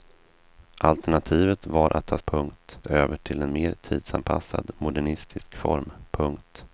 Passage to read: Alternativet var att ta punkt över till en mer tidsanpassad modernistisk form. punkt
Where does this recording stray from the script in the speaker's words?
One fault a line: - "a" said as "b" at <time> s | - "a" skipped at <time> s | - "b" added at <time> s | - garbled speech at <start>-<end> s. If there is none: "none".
none